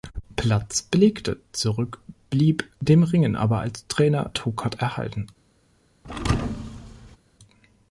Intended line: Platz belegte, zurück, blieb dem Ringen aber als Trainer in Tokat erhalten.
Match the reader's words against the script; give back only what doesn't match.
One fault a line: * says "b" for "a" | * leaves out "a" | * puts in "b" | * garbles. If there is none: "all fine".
* leaves out "in"